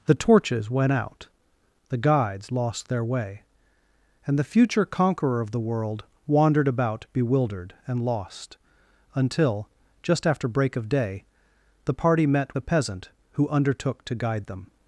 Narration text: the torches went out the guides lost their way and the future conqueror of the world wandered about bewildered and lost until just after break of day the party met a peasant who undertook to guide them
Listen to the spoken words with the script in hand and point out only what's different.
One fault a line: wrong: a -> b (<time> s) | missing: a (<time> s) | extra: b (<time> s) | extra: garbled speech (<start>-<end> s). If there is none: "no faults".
no faults